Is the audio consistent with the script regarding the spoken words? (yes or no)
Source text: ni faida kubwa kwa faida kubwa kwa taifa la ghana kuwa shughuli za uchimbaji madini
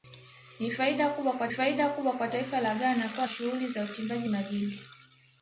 yes